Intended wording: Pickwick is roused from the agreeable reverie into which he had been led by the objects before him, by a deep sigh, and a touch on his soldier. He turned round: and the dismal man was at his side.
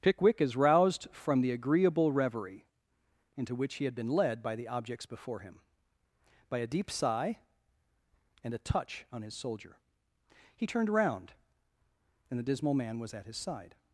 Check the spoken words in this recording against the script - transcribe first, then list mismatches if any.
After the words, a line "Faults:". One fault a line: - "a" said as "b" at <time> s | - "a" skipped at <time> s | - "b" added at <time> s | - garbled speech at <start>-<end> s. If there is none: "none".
Pickwick is roused from the agreeable reverie into which he had been led by the objects before him, by a deep sigh, and a touch on his soldier. He turned round: and the dismal man was at his side.
Faults:
none